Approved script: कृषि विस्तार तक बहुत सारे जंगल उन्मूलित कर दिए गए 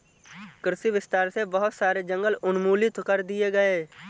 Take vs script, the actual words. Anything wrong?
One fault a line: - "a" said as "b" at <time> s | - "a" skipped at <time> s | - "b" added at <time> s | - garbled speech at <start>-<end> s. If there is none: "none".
- "तक" said as "से" at 1.3 s